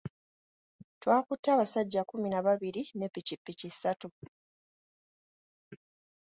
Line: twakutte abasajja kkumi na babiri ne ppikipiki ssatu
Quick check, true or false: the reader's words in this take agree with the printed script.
true